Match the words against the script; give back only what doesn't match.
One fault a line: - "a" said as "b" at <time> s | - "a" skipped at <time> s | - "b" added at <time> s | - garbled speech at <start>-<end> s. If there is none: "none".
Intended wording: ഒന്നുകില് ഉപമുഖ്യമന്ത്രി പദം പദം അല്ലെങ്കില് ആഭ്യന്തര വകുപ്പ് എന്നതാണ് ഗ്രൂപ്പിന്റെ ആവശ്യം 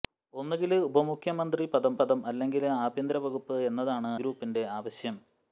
none